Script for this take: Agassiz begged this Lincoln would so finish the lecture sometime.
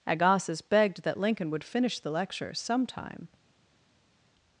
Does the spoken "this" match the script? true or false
false